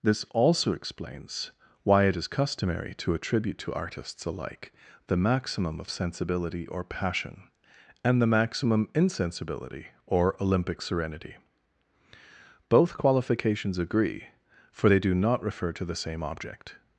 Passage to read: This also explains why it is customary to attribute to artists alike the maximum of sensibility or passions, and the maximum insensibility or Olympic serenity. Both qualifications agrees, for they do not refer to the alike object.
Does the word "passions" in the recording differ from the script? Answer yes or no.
yes